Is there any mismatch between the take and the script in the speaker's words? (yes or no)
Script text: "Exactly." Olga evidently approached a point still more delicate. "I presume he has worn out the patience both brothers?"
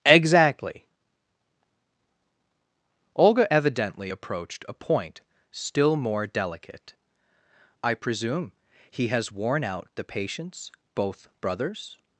no